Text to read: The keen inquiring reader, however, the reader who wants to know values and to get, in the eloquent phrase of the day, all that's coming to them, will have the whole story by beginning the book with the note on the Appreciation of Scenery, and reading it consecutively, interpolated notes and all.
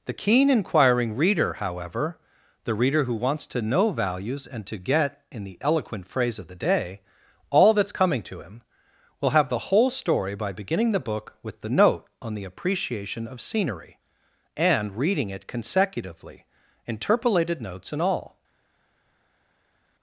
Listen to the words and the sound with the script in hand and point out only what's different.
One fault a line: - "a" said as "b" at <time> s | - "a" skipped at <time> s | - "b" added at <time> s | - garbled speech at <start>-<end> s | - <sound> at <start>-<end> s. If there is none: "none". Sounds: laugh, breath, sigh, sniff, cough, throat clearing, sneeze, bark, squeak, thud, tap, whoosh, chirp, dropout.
- "them" said as "him" at 8.4 s